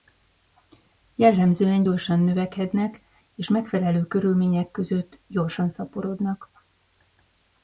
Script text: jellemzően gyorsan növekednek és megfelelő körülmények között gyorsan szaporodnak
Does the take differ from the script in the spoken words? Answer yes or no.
no